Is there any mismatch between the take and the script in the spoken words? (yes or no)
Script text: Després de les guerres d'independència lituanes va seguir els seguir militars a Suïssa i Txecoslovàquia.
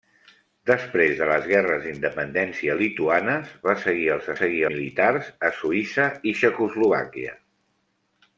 no